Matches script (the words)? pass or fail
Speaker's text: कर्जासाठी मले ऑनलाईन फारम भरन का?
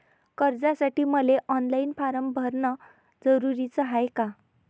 fail